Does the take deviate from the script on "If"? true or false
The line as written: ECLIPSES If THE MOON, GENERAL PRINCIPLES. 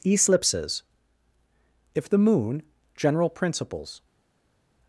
false